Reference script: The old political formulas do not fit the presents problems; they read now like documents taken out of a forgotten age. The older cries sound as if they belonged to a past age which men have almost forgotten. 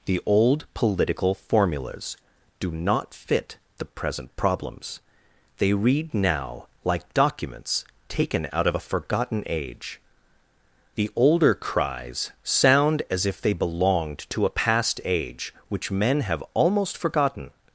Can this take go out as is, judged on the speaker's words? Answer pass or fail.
fail